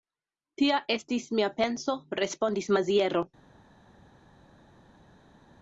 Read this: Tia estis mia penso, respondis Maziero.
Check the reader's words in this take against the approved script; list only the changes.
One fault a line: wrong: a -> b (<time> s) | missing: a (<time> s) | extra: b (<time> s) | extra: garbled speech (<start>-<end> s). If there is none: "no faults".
no faults